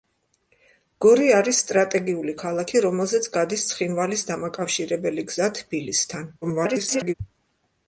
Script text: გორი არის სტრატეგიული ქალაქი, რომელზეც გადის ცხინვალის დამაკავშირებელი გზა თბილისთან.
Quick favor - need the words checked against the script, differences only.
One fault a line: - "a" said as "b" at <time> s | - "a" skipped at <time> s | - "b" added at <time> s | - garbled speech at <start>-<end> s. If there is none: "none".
- garbled speech at 6.4-7.1 s